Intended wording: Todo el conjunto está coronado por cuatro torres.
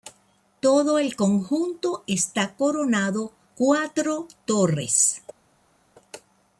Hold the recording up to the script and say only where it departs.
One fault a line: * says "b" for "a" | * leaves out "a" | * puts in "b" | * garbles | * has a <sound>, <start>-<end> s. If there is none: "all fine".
* leaves out "por"